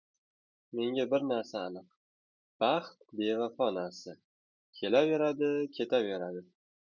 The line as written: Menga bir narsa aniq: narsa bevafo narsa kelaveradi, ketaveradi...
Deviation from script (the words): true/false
true